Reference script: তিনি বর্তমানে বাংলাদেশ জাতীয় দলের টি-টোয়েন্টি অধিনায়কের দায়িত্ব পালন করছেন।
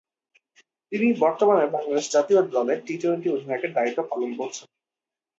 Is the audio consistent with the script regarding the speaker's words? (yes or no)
yes